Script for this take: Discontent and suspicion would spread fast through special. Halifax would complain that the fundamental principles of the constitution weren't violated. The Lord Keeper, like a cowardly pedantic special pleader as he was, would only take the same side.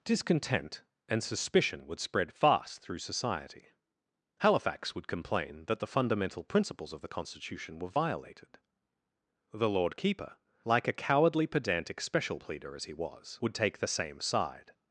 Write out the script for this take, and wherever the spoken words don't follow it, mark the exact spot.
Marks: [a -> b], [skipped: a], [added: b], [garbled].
Discontent and suspicion would spread fast through [special. -> society] Halifax would complain that the fundamental principles of the constitution [weren't -> were] violated. The Lord Keeper, like a cowardly pedantic special pleader as he was, would [skipped: only] take the same side.